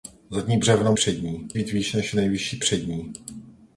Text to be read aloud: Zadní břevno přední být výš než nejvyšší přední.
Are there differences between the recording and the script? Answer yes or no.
no